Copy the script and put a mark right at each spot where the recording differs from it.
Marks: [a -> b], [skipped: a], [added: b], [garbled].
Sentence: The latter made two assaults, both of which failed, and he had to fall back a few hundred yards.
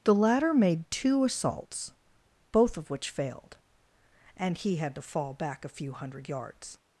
The latter made two assaults, both of which failed, and he had to fall back a few hundred yards.